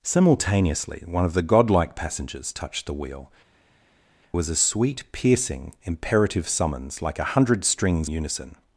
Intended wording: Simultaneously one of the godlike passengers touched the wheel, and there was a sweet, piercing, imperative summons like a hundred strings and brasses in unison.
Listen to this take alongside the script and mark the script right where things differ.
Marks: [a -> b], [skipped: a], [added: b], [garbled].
Simultaneously one of the godlike passengers touched the wheel, [skipped: and there] was a sweet, piercing, imperative summons like a hundred strings [skipped: and brasses in] unison.